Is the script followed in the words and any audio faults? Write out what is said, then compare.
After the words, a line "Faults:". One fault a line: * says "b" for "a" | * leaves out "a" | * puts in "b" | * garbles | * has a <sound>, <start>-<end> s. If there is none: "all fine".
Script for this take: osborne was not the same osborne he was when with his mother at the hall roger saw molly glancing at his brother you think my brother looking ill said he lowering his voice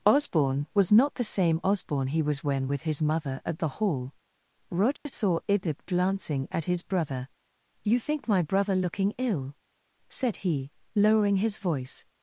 osborne was not the same osborne he was when with his mother at the hall roger saw ibib glancing at his brother you think my brother looking ill said he lowering his voice
Faults:
* has a dropout, 5.0-5.1 s
* says "ibib" for "molly"